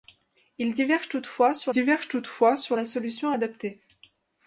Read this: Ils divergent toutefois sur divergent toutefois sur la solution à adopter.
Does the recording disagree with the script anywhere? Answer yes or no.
no